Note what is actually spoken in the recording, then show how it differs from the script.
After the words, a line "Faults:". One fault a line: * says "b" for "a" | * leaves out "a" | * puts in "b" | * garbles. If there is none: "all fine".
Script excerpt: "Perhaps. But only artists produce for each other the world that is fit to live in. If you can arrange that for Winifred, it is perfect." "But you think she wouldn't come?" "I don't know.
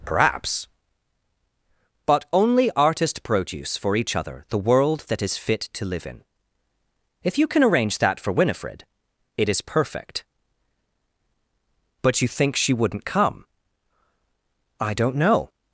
"Perhaps. But only artist produce for each other the world that is fit to live in. If you can arrange that for Winifred, it is perfect." "But you think she wouldn't come?" "I don't know.
Faults:
* says "artist" for "artists"